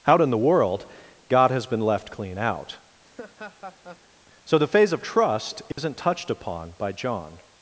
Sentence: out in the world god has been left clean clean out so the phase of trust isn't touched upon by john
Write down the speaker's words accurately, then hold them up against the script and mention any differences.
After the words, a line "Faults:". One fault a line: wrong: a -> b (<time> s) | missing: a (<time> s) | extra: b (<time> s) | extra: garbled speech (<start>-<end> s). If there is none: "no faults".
out in the world god has been left clean out so the phase of trust isn't touched upon by john
Faults:
missing: clean (2.4 s)